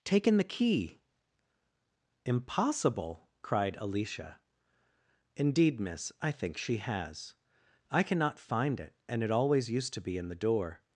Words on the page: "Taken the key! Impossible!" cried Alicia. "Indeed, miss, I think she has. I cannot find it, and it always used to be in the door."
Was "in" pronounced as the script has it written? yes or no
yes